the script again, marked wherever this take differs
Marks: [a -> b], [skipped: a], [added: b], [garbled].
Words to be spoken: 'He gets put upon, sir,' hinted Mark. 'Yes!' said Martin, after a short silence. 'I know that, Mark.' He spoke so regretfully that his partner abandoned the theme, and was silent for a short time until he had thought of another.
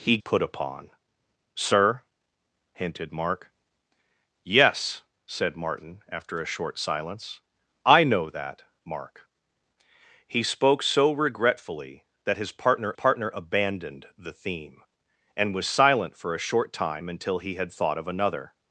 'He [skipped: gets] put upon, sir,' hinted Mark. 'Yes!' said Martin, after a short silence. 'I know that, Mark.' He spoke so regretfully that his partner [added: partner] abandoned the theme, and was silent for a short time until he had thought of another.